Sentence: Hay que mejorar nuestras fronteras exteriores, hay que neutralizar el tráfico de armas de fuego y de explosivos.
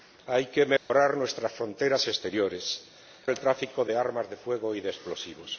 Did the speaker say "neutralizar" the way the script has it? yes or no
no